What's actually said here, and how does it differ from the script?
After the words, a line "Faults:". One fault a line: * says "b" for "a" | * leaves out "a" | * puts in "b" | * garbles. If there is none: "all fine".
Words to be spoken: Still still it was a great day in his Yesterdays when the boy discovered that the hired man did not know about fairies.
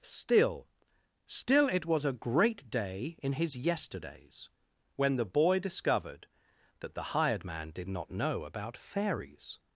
Still still it was a great day in his Yesterdays when the boy discovered that the hired man did not know about fairies.
Faults:
all fine